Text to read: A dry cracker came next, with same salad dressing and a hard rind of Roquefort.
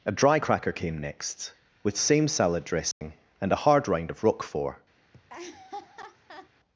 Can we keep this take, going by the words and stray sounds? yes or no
no